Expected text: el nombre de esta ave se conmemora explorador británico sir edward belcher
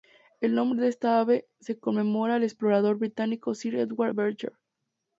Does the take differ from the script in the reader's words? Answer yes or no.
yes